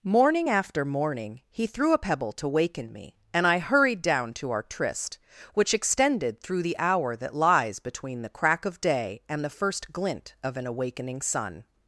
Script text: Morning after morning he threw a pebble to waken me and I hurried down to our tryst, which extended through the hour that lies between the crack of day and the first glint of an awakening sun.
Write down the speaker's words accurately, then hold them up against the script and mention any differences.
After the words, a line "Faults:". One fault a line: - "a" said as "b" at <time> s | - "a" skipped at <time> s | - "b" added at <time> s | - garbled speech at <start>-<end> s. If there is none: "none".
Morning after morning he threw a pebble to waken me and I hurried down to our tryst, which extended through the hour that lies between the crack of day and the first glint of an awakening sun.
Faults:
none